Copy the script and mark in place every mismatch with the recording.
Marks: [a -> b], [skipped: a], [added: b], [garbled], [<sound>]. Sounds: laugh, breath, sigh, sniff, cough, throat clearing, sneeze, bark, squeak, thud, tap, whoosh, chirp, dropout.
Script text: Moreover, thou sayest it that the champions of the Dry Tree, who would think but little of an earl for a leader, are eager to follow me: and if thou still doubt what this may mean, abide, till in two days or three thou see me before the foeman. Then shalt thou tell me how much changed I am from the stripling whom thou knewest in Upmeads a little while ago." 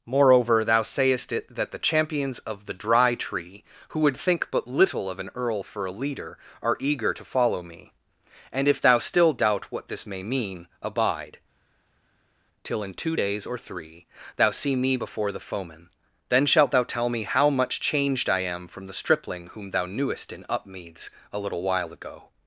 Moreover, thou sayest it that the champions of the Dry Tree, who would think but little of an earl for a leader, are eager to follow me: and if thou still doubt what this may mean, abide, till in two days or three thou see me before the foeman. Then shalt thou tell me how much changed I am from the stripling whom thou knewest in Upmeads a little while ago."